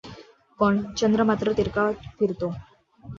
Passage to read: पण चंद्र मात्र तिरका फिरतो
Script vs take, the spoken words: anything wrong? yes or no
no